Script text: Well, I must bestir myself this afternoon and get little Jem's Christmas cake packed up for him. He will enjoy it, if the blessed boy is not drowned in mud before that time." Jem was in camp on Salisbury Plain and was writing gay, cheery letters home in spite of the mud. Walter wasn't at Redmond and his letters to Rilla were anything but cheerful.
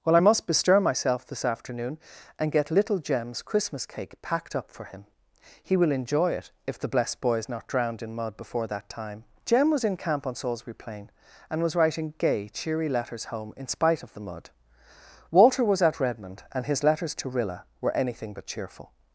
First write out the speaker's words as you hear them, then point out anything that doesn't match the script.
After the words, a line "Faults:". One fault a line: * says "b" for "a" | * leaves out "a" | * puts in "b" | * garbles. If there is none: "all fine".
Well, I must bestir myself this afternoon and get little Jem's Christmas cake packed up for him. He will enjoy it, if the blessed boy is not drowned in mud before that time." Jem was in camp on Salisbury Plain and was writing gay, cheery letters home in spite of the mud. Walter was at Redmond and his letters to Rilla were anything but cheerful.
Faults:
* says "was" for "wasn't"